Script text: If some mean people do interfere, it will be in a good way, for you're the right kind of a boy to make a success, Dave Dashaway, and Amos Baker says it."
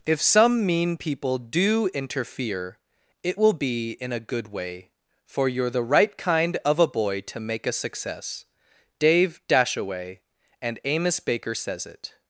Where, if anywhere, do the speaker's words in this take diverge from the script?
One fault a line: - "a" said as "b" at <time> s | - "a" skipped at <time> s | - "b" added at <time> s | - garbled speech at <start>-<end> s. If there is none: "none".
none